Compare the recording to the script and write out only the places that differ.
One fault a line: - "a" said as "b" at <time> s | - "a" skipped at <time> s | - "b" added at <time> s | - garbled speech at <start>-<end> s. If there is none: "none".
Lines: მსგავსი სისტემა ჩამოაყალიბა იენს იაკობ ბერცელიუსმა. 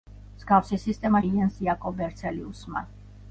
- "ჩამოაყალიბა" skipped at 1.2 s